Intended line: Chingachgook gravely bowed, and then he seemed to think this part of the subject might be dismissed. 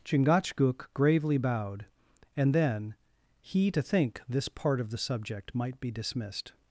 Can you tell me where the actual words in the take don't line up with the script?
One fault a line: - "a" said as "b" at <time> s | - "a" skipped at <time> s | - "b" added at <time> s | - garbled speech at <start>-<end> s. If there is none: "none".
- "seemed" skipped at 3.7 s